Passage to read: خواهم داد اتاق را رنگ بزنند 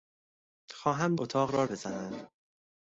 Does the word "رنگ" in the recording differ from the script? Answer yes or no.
yes